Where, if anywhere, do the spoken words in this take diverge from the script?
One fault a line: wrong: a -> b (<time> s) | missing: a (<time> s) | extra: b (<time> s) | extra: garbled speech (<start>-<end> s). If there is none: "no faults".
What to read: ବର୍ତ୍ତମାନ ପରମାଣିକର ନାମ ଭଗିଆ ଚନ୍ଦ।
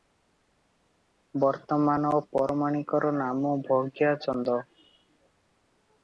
no faults